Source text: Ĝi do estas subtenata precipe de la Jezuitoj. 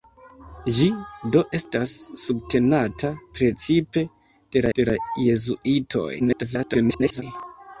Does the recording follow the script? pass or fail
fail